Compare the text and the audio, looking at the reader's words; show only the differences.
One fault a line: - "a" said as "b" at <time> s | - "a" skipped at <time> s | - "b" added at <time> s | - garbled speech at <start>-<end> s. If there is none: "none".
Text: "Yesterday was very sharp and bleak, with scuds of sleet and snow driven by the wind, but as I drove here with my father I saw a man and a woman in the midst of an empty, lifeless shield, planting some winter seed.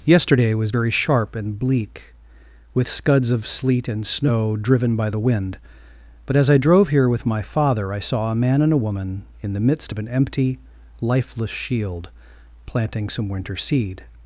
none